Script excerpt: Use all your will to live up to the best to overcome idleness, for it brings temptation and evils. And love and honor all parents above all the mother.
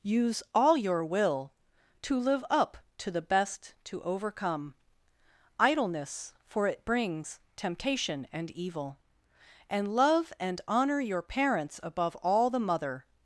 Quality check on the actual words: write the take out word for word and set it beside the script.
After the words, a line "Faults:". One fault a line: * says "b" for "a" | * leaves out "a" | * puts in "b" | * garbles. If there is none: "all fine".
Use all your will to live up to the best to overcome idleness, for it brings temptation and evil. And love and honor your parents above all the mother.
Faults:
* says "evil" for "evils"
* says "your" for "all"